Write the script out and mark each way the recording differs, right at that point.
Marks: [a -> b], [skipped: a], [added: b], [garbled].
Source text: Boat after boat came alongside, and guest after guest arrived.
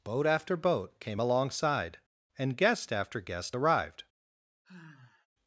Boat after boat came alongside, and guest after guest arrived.